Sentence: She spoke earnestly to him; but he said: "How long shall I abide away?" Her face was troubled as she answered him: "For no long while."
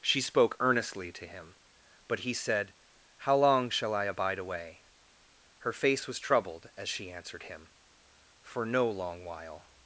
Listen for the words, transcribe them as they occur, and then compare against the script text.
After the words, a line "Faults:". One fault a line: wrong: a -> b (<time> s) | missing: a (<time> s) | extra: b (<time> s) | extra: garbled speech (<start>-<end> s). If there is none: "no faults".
She spoke earnestly to him; but he said: "How long shall I abide away?" Her face was troubled as she answered him: "For no long while."
Faults:
no faults